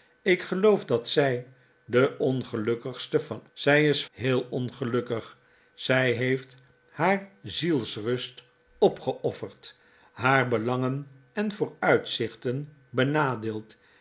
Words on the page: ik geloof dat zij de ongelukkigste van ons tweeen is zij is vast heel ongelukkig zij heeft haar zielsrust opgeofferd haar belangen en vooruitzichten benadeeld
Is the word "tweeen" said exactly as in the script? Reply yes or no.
no